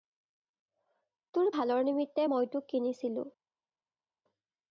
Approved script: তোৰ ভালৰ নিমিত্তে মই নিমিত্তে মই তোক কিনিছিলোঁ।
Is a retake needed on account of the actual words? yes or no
yes